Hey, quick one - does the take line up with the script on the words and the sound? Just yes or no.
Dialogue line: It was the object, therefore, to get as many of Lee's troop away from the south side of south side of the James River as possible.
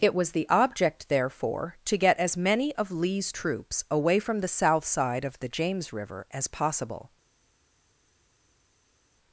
no